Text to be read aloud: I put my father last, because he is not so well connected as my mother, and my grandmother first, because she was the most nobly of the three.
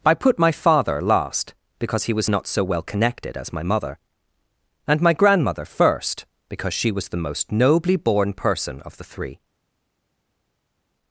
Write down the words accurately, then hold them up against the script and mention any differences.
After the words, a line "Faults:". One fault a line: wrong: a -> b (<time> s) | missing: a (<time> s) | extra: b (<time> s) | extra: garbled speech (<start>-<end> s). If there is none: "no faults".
I put my father last, because he was not so well connected as my mother, and my grandmother first, because she was the most nobly born person of the three.
Faults:
wrong: is -> was (2.1 s)
extra: born person (8.0 s)